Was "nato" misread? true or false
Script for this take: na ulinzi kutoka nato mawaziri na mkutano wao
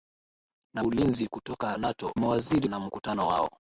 false